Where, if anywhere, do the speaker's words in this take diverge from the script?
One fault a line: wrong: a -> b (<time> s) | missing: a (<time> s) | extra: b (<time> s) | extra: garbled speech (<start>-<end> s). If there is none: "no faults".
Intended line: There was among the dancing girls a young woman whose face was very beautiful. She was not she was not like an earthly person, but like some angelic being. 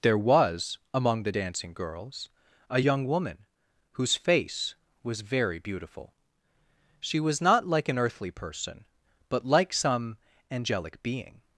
missing: she was not (7.7 s)